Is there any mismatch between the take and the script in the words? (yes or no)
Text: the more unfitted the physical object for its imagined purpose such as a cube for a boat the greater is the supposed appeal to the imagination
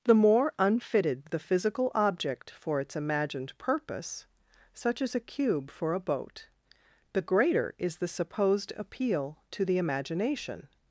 no